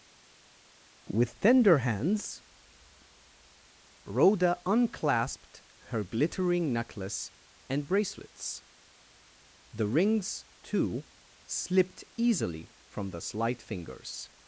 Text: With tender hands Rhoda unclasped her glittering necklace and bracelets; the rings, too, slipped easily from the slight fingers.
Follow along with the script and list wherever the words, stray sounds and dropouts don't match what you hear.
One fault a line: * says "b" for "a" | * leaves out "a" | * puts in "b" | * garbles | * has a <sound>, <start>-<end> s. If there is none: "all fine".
all fine